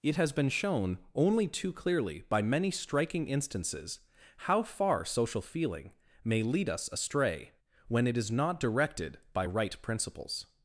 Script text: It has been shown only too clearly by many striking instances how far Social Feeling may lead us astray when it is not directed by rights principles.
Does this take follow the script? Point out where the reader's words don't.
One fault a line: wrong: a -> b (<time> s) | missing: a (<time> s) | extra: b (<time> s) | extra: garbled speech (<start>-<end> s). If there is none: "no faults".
wrong: rights -> right (9.4 s)